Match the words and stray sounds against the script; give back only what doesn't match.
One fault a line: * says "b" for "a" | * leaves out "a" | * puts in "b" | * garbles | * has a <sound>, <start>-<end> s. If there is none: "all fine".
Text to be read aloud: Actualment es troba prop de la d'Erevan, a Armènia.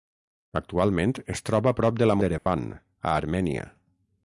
* has a dropout, 2.4-2.5 s